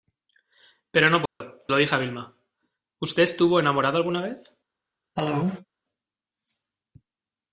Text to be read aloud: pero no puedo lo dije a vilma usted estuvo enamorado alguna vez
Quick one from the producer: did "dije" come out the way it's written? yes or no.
yes